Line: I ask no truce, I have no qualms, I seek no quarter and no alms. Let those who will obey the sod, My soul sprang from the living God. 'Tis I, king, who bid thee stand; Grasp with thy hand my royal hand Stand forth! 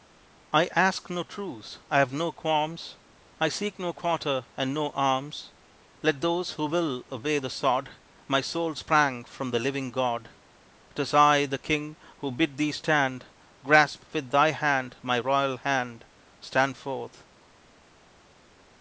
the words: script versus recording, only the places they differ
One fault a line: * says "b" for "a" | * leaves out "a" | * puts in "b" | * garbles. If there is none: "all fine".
* puts in "the"